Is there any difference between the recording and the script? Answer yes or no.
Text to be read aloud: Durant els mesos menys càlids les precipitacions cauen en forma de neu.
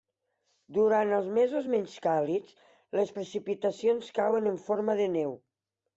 no